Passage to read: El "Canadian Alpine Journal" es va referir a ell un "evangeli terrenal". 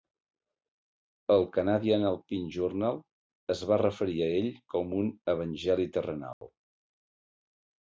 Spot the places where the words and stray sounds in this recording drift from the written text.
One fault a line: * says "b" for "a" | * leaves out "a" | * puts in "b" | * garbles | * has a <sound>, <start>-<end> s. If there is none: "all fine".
* puts in "com"
* has a dropout, 6.3-6.4 s